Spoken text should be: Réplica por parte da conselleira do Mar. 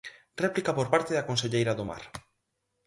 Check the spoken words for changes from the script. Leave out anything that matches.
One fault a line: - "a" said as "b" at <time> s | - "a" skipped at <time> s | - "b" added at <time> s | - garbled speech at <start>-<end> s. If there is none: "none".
none